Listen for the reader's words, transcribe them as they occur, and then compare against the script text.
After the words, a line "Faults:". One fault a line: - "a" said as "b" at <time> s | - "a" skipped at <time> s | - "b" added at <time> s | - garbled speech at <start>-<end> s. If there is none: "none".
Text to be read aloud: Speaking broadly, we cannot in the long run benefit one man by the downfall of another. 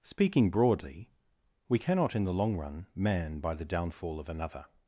Speaking broadly, we cannot in the long run man by the downfall of another.
Faults:
- "benefit one" skipped at 2.9 s